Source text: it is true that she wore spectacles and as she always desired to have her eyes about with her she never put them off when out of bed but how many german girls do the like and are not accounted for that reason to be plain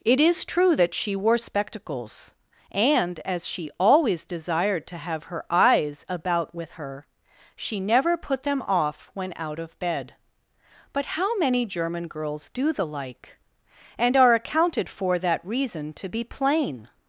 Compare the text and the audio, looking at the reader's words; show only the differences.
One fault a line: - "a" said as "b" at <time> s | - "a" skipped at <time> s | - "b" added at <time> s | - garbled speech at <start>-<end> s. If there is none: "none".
- "not" skipped at 14.3 s